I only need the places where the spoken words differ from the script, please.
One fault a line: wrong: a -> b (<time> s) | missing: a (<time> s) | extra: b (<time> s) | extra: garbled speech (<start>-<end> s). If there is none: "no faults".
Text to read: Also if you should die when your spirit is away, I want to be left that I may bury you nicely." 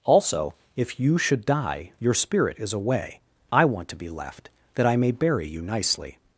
missing: when (1.9 s)